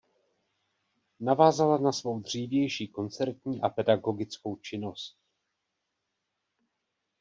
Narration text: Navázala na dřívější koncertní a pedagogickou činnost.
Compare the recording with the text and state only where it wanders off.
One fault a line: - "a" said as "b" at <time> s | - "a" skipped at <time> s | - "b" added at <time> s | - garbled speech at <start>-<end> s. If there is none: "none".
- "svou" added at 1.9 s